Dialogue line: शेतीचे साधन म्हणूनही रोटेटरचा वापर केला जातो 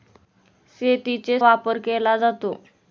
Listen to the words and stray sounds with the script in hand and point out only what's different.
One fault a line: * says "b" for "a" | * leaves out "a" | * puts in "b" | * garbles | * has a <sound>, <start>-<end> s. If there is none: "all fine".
* leaves out "साधन म्हणूनही रोटेटरचा"